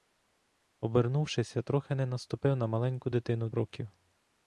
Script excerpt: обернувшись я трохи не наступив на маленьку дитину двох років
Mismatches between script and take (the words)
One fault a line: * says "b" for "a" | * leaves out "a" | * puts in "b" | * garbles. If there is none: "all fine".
* leaves out "двох"